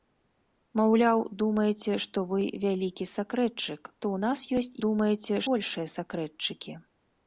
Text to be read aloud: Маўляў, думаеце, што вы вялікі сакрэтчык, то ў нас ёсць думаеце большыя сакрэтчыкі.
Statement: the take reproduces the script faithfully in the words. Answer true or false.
true